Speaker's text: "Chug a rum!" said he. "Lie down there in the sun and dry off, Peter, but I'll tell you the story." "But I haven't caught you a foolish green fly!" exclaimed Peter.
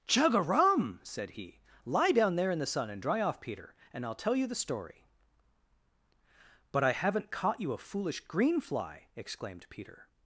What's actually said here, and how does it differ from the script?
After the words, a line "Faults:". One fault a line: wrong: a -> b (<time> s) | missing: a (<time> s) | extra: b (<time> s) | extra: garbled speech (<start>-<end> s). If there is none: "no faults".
"Chug a rum!" said he. "Lie down there in the sun and dry off, Peter, and I'll tell you the story." "But I haven't caught you a foolish green fly!" exclaimed Peter.
Faults:
wrong: but -> and (3.9 s)